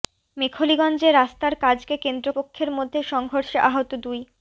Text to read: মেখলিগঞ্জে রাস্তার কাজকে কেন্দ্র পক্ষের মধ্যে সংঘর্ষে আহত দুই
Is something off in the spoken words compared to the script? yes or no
no